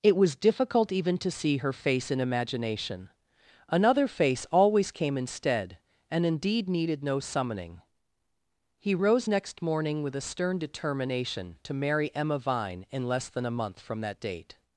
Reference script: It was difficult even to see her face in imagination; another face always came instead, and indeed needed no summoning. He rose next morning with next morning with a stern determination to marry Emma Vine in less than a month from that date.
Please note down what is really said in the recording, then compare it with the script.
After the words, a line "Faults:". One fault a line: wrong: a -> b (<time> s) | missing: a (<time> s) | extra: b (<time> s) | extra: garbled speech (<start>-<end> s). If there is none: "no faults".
It was difficult even to see her face in imagination; another face always came instead, and indeed needed no summoning. He rose next morning with a stern determination to marry Emma Vine in less than a month from that date.
Faults:
missing: next morning with (10.1 s)